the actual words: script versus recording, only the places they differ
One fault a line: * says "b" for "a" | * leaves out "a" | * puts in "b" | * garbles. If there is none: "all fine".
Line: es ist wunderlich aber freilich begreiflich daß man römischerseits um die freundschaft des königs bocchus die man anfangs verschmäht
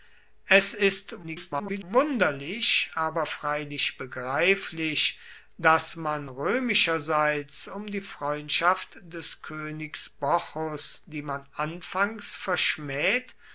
* garbles